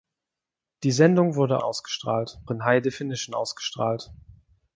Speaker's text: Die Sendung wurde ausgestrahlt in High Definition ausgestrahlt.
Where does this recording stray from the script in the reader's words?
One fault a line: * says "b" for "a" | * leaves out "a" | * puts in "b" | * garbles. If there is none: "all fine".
all fine